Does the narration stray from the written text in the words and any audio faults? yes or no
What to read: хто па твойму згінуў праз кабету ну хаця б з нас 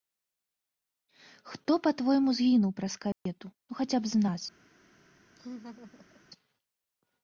yes